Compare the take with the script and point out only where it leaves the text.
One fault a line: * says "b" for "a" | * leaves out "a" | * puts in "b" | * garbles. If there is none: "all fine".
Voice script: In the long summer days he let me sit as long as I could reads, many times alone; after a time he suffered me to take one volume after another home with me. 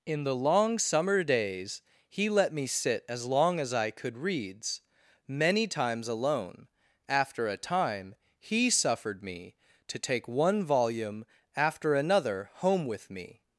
all fine